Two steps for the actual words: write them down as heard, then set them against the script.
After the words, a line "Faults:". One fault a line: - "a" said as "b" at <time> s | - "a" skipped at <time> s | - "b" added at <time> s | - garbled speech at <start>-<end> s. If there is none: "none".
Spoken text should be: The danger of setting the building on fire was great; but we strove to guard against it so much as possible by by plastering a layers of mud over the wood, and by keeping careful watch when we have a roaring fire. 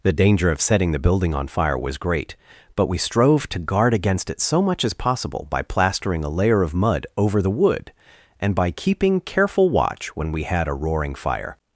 The danger of setting the building on fire was great; but we strove to guard against it so much as possible by plastering a layer of mud over the wood, and by keeping careful watch when we had a roaring fire.
Faults:
- "by" skipped at 5.6 s
- "layers" said as "layer" at 6.3 s
- "have" said as "had" at 10.4 s